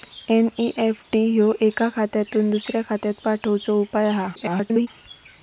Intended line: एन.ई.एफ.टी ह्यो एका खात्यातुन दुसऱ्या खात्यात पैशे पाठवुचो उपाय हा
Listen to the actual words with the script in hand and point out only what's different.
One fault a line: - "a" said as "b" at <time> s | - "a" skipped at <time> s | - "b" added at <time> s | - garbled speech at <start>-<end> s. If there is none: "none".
- "पैशे" skipped at 3.2 s
- garbled speech at 4.4-4.9 s